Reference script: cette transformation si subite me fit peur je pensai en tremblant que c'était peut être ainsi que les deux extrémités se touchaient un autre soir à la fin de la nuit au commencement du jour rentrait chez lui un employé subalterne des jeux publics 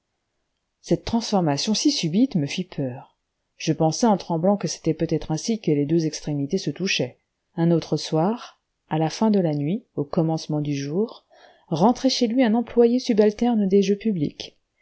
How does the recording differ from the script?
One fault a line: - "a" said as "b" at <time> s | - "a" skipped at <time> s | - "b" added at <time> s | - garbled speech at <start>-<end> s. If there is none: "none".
none